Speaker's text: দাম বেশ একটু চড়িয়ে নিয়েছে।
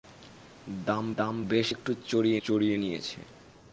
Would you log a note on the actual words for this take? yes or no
yes